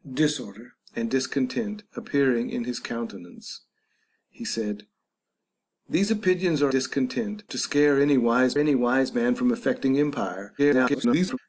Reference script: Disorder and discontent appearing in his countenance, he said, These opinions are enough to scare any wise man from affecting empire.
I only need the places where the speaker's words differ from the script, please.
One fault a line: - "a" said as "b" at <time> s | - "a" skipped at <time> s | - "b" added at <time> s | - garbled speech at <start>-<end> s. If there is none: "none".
- "enough" said as "discontent" at 6.7 s
- "any wise" added at 8.6 s
- garbled speech at 10.6-11.4 s